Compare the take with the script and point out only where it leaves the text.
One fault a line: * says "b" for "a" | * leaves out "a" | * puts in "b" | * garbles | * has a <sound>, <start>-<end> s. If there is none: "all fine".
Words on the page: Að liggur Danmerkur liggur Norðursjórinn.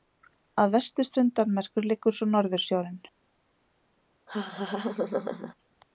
* says "vesturströnd" for "liggur"
* puts in "svo"
* has a laugh, 4.3-5.5 s